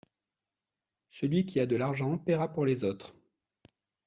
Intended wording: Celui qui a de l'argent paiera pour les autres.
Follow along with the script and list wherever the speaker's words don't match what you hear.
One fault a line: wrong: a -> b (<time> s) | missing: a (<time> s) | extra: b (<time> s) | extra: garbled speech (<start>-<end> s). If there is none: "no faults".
no faults